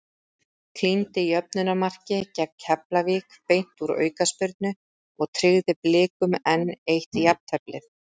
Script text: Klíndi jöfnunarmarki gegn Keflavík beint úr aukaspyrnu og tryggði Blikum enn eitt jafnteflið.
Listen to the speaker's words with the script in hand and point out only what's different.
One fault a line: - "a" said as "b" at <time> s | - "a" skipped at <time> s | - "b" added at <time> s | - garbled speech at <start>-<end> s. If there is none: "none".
none